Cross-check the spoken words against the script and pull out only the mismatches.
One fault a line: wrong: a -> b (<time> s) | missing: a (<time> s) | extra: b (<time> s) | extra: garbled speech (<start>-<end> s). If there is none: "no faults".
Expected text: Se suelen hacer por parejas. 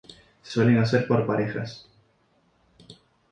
no faults